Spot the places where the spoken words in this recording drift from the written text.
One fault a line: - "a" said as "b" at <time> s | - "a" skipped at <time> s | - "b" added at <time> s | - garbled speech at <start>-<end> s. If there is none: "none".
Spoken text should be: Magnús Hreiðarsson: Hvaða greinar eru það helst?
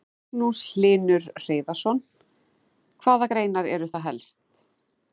- "Hlynur" added at 0.7 s